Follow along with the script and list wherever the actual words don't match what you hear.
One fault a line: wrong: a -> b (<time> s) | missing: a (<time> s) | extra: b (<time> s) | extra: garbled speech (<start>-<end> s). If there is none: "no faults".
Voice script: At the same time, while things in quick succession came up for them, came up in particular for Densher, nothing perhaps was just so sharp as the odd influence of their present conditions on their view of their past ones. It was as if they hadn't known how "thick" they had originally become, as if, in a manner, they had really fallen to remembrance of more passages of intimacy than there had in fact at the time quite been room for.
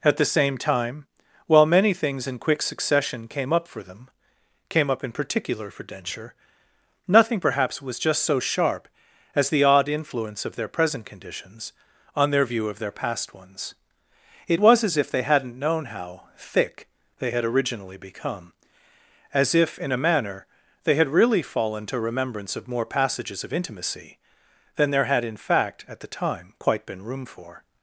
extra: many (1.7 s)